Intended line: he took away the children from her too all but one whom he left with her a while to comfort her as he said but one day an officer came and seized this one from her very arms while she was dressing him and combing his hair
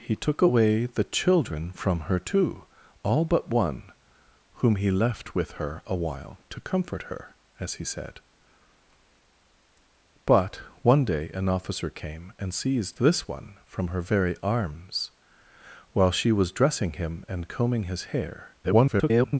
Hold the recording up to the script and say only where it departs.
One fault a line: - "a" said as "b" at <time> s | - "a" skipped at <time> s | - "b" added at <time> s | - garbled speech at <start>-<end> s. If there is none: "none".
- garbled speech at 18.6-19.4 s